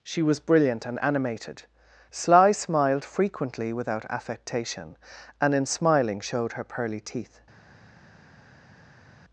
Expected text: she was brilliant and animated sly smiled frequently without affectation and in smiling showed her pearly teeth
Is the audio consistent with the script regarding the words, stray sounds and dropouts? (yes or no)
yes